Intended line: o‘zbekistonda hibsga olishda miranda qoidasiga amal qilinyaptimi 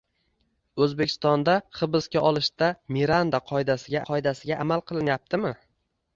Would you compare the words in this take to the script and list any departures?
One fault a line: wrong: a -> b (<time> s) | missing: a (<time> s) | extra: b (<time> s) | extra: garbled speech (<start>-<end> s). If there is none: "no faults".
extra: qoidasiga (4.1 s)